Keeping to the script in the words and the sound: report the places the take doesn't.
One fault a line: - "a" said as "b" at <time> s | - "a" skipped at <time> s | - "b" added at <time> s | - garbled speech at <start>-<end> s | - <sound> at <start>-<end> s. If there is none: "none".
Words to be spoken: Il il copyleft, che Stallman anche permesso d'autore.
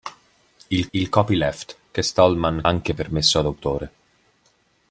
none